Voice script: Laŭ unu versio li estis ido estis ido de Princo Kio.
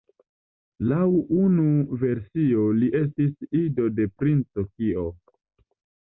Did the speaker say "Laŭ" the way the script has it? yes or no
yes